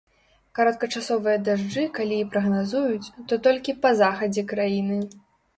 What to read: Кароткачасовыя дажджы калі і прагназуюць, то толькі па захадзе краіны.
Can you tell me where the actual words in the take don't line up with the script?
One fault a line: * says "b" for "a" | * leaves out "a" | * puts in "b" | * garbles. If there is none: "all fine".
all fine